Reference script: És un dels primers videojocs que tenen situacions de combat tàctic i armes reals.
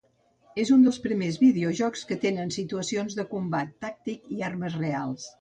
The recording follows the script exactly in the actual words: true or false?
true